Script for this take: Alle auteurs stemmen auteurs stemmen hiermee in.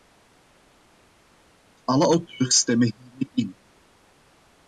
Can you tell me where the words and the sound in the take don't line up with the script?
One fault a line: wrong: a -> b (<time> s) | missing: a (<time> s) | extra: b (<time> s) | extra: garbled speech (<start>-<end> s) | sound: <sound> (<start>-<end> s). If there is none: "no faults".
missing: auteurs stemmen (2.9 s)